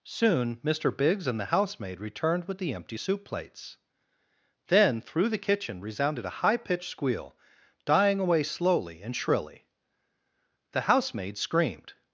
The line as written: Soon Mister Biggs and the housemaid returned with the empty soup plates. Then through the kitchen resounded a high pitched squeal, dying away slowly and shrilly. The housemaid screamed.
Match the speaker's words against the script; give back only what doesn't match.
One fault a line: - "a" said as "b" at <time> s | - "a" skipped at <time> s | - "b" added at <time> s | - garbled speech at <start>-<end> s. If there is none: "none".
none